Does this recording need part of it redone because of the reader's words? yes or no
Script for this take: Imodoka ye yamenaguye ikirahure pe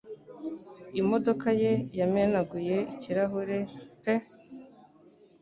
no